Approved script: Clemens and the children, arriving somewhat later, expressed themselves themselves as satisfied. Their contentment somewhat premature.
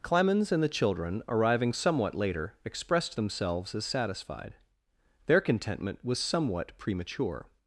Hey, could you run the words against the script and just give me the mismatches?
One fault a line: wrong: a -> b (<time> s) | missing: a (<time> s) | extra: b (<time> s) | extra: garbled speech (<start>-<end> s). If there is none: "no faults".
missing: themselves (3.7 s)
extra: was (6.0 s)